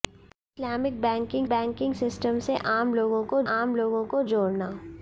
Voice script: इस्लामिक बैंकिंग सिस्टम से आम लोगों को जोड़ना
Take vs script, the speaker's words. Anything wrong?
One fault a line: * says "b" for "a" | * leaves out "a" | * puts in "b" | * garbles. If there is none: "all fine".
* puts in "बैंकिंग"
* puts in "आम लोगों को"